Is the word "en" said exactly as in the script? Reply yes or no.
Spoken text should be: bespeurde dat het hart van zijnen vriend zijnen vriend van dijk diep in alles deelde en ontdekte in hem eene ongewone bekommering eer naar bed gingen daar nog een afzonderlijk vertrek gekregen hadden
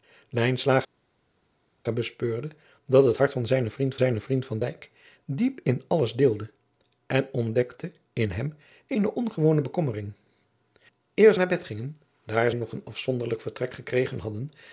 yes